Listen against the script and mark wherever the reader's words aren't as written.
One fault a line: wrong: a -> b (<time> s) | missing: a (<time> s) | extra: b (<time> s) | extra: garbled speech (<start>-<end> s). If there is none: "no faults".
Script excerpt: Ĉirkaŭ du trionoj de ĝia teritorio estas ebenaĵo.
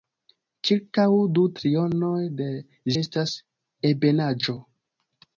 missing: ĝia teritorio (2.5 s)